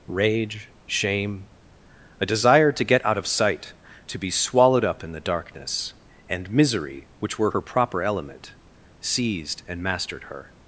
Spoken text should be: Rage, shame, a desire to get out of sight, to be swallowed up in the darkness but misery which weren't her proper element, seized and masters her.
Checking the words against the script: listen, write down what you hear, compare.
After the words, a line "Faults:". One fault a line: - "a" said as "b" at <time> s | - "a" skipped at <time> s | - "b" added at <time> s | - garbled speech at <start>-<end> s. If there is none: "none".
Rage, shame, a desire to get out of sight, to be swallowed up in the darkness and misery which were her proper element, seized and mastered her.
Faults:
- "but" said as "and" at 6.3 s
- "weren't" said as "were" at 7.4 s
- "masters" said as "mastered" at 9.8 s